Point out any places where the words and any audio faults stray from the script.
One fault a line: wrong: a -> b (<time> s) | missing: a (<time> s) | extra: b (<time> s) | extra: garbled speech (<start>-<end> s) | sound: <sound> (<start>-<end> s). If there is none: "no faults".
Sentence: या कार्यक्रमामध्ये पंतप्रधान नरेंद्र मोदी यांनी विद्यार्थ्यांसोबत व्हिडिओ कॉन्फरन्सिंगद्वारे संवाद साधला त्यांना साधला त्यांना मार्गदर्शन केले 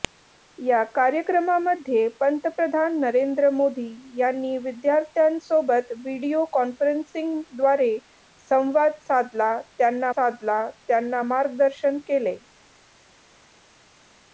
no faults